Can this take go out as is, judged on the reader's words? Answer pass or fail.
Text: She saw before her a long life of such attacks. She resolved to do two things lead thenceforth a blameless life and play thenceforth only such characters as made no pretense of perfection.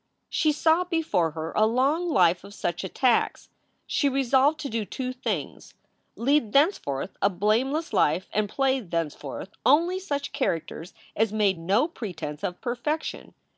pass